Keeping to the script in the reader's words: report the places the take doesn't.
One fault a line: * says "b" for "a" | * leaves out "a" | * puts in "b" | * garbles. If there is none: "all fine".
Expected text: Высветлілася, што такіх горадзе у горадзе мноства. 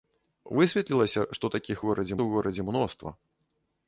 all fine